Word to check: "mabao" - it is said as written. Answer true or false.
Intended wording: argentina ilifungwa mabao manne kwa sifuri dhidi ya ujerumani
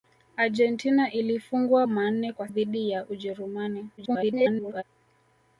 false